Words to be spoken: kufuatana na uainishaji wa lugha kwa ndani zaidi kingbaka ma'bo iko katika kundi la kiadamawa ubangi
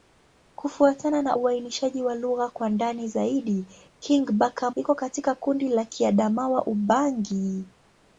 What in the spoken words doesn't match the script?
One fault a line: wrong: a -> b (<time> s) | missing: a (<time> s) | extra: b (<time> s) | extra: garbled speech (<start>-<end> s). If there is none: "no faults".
missing: ma'bo (4.7 s)